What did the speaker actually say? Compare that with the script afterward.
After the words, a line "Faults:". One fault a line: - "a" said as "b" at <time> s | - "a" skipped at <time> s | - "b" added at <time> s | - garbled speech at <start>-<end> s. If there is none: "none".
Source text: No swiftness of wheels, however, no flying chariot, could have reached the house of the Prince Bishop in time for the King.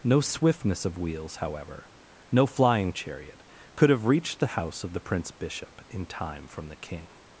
No swiftness of wheels, however, no flying chariot, could have reached the house of the Prince Bishop in time from the King.
Faults:
- "for" said as "from" at 6.5 s